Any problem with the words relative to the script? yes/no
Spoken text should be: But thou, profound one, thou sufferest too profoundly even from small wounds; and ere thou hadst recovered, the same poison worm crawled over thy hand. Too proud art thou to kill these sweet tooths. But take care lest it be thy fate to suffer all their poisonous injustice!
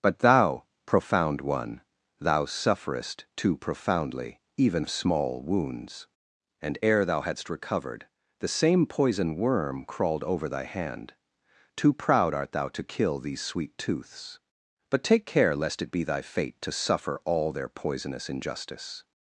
yes